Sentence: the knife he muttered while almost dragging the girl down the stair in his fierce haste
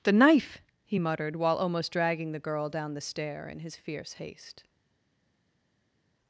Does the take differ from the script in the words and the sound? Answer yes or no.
no